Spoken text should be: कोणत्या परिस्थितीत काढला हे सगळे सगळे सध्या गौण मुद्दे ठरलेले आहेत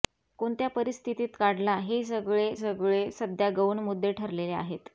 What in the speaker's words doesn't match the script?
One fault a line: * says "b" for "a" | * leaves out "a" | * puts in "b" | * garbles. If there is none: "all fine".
all fine